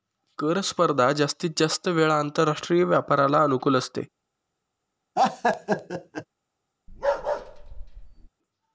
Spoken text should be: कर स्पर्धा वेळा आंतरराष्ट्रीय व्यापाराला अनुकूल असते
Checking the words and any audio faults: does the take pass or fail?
fail